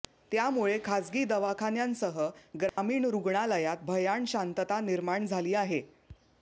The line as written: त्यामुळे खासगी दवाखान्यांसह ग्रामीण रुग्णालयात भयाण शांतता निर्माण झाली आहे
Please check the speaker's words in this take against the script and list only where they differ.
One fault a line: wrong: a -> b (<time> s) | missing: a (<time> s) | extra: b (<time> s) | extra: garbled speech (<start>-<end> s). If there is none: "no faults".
no faults